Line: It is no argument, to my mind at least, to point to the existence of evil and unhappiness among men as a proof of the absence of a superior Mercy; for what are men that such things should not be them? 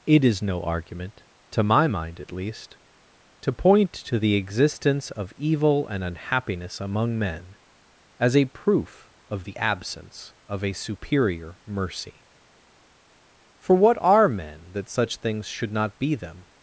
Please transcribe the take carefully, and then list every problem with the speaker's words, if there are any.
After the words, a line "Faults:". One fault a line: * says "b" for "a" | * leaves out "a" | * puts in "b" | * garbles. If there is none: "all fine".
It is no argument, to my mind at least, to point to the existence of evil and unhappiness among men as a proof of the absence of a superior Mercy; for what are men that such things should not be them?
Faults:
all fine